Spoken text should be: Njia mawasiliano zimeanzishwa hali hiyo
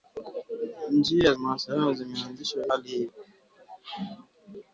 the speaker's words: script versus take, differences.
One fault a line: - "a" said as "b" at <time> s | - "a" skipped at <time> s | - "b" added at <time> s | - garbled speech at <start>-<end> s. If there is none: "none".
none